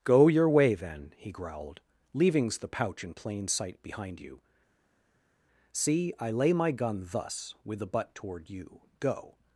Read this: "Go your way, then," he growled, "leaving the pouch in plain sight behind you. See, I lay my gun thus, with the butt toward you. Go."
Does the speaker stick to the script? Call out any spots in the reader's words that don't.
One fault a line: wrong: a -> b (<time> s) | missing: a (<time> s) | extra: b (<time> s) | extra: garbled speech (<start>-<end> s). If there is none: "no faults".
wrong: leaving -> leavings (2.1 s)